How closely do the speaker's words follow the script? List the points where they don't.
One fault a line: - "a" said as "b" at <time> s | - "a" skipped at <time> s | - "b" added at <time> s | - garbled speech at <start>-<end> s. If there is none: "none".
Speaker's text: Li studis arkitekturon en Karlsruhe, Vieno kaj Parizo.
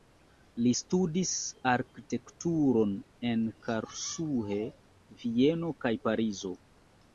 none